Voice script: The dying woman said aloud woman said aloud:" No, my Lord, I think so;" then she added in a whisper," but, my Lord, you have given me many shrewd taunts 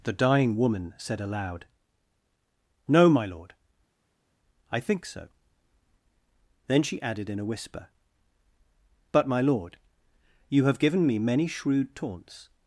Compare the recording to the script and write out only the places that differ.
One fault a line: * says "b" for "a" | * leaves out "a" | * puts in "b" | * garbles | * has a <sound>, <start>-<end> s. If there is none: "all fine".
* leaves out "woman said aloud"